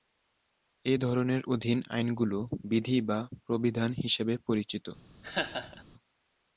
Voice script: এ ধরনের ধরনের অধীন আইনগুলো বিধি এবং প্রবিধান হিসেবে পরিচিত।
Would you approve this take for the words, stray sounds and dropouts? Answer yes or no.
no